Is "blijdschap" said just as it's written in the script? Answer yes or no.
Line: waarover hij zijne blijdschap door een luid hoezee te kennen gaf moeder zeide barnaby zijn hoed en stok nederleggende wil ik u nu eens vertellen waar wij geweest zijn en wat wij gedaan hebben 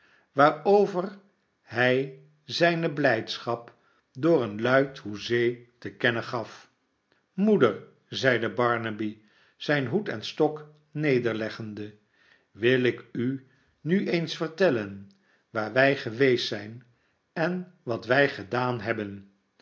yes